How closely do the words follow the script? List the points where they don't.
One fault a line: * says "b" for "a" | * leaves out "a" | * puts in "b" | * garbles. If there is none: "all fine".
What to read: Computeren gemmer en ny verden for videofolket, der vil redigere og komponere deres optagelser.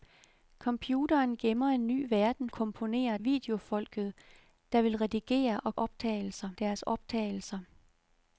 * says "komponere" for "for"
* says "optagelser" for "komponere"